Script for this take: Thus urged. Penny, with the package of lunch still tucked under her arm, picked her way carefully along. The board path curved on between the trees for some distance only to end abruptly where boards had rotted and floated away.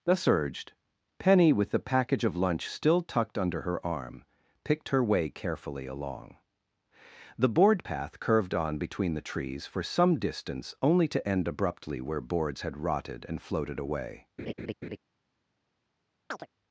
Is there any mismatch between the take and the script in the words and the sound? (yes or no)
yes